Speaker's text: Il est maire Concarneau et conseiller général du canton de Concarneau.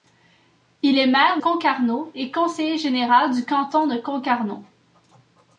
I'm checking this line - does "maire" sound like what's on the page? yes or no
yes